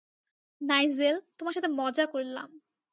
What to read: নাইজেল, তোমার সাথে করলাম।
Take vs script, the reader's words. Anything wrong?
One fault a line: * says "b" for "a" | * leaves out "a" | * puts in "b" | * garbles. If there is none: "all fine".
* puts in "মজা"